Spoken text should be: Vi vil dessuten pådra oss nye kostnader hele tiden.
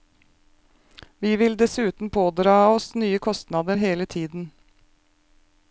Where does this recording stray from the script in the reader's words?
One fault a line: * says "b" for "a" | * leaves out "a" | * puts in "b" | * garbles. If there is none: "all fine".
all fine